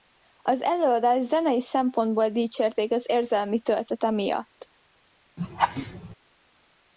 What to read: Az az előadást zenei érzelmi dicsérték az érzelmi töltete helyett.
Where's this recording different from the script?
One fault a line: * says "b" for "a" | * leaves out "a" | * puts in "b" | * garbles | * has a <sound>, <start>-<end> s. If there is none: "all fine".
* leaves out "az"
* says "szempontból" for "érzelmi"
* says "miatt" for "helyett"
* has a laugh, 5.4-6.2 s